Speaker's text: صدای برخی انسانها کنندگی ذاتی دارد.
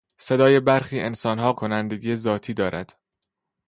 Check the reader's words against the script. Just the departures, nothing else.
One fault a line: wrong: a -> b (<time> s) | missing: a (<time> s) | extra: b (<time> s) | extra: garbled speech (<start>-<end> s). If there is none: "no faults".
no faults